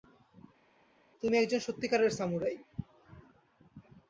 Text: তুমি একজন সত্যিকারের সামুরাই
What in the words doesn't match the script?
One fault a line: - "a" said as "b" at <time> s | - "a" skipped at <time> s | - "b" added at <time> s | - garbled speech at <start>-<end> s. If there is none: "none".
none